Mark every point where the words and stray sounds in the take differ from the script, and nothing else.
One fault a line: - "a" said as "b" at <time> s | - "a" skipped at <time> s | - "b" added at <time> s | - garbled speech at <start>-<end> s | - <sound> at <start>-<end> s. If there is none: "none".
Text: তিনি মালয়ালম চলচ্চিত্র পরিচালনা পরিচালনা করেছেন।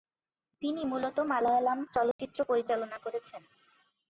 - "মূলত" added at 0.8 s
- dropout at 2.1-2.2 s
- "পরিচালনা" skipped at 3.0 s